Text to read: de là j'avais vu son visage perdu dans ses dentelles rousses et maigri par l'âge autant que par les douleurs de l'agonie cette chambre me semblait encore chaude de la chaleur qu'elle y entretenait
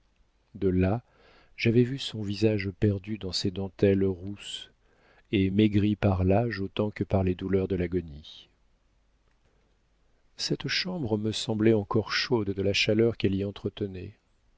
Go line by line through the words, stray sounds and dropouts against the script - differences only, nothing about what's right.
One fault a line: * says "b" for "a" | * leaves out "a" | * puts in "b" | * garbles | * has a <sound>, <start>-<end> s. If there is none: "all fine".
all fine